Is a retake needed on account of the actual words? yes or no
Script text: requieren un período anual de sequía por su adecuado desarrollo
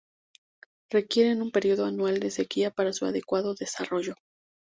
yes